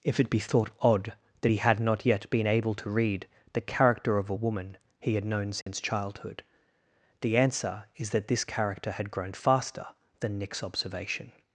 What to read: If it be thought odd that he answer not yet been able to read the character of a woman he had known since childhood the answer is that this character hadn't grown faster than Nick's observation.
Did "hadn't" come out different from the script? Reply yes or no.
yes